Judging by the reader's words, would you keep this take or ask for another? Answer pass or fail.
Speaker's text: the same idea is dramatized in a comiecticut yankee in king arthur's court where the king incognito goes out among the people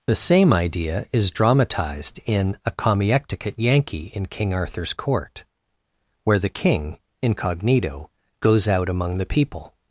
pass